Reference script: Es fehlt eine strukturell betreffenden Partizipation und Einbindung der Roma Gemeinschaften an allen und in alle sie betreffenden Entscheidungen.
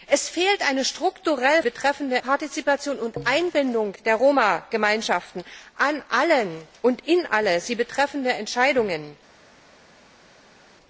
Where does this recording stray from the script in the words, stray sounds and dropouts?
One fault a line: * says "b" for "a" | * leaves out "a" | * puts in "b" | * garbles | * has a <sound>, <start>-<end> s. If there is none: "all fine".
all fine